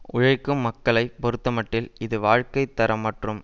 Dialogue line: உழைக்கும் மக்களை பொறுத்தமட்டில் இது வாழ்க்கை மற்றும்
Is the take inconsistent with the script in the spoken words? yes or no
yes